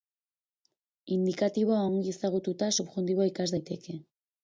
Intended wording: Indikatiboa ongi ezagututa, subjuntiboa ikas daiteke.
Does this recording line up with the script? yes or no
yes